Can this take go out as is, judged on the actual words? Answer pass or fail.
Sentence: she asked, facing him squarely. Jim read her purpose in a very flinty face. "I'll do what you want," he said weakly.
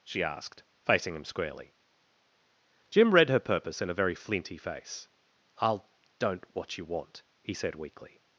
fail